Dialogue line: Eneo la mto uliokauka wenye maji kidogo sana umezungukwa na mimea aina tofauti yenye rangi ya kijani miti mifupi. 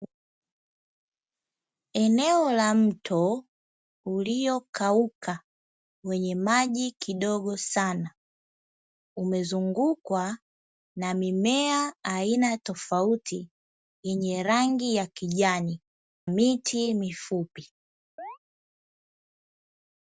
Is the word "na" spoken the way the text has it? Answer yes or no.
yes